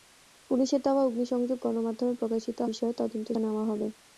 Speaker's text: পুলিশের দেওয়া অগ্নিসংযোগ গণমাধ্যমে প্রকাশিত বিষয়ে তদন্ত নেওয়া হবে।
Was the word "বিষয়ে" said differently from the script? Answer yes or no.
no